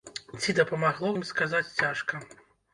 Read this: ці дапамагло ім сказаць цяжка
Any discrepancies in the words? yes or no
no